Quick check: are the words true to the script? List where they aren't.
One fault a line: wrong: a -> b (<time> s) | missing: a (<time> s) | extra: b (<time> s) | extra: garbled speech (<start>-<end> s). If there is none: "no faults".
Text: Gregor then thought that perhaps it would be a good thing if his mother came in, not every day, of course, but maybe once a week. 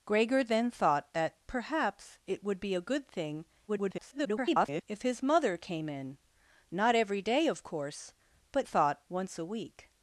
extra: garbled speech (3.7-4.8 s)
wrong: maybe -> thought (8.6 s)